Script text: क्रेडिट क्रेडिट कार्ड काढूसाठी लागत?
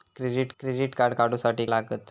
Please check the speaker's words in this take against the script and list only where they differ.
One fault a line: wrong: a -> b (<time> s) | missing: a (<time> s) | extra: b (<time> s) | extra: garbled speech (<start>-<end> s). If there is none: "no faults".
no faults